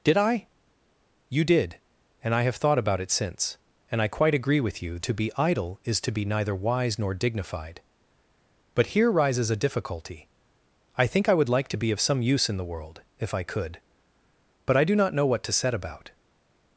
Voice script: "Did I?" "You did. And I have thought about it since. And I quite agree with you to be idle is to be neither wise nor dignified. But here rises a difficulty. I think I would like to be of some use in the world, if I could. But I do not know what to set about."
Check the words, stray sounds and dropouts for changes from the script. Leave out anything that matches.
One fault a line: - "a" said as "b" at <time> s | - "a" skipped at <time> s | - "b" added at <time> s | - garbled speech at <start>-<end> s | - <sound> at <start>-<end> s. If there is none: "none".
none